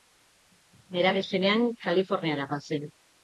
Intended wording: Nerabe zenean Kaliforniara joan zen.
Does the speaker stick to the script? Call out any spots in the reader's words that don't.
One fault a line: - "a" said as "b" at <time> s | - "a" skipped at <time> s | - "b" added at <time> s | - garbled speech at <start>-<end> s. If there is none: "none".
none